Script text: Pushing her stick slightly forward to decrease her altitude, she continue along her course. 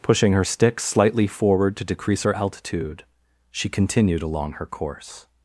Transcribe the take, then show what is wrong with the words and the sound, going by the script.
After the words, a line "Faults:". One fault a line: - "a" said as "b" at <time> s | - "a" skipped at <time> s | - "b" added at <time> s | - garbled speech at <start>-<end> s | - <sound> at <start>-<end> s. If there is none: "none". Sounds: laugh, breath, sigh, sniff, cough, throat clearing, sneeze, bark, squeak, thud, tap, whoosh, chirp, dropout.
Pushing her stick slightly forward to decrease her altitude, she continued along her course.
Faults:
- "continue" said as "continued" at 3.7 s